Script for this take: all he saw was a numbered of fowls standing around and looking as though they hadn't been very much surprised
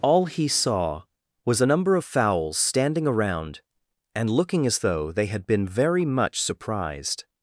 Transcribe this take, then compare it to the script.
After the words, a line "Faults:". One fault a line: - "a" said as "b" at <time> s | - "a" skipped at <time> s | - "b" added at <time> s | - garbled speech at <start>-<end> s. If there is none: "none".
all he saw was a number of fowls standing around and looking as though they had been very much surprised
Faults:
- "numbered" said as "number" at 1.6 s
- "hadn't" said as "had" at 5.3 s